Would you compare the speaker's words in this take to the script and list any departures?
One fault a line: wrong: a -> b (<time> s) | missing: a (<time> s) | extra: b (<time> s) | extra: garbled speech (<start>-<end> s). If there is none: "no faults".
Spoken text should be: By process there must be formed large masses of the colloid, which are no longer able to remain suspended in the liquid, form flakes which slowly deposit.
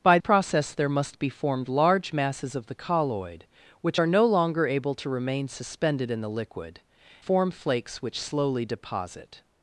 no faults